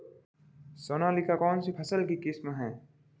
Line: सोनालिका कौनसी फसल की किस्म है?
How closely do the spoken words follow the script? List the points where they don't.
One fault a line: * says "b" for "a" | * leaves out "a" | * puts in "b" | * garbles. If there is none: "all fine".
all fine